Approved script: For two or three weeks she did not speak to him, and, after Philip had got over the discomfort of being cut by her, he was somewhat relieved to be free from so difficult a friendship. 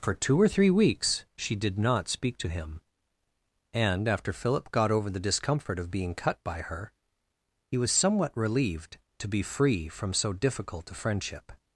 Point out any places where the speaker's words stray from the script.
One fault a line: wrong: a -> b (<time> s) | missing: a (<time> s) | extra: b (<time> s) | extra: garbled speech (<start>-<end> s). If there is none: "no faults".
missing: had (4.7 s)